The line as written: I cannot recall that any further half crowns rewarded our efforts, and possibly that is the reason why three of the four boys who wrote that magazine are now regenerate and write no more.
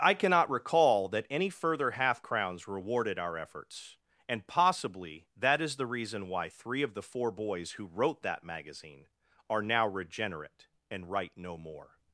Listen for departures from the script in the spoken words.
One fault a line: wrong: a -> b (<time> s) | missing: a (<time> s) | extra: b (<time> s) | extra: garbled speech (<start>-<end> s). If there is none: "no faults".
no faults